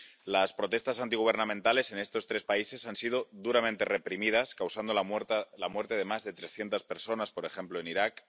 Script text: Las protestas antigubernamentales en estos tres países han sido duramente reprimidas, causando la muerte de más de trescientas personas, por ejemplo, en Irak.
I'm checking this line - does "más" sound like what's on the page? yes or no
yes